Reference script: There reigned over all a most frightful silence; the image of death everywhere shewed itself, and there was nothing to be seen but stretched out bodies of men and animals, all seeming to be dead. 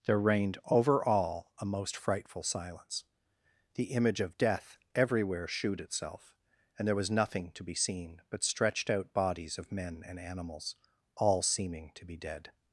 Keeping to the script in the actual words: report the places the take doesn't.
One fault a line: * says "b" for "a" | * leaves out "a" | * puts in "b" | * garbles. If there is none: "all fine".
all fine